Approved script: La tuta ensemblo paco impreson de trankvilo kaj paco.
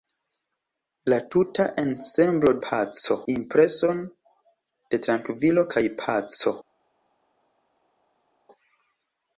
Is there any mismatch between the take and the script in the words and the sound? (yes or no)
no